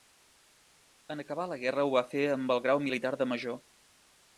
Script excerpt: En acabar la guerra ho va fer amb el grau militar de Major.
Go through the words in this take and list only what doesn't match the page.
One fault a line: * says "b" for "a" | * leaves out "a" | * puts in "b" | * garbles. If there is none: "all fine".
all fine